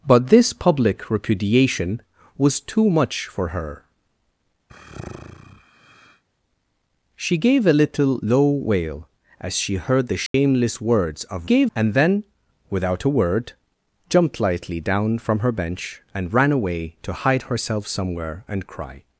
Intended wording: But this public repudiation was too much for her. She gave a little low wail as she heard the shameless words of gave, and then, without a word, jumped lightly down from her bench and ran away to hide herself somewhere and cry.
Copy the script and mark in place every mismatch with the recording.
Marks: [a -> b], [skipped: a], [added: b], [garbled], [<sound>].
But this public repudiation was too much for her. [sigh] She gave a little low wail as she heard the shameless [dropout] words of gave, and then, without a word, jumped lightly down from her bench and ran away to hide herself somewhere and cry.